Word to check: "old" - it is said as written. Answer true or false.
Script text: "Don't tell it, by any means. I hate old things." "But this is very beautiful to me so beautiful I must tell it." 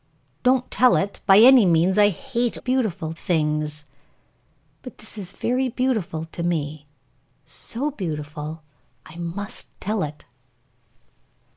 false